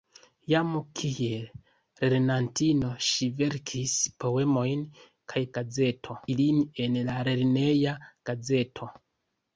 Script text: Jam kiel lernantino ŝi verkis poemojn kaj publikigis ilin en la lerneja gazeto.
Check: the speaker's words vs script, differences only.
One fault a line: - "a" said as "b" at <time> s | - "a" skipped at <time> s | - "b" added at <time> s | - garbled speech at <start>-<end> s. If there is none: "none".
- "publikigis" said as "gazeto" at 5.6 s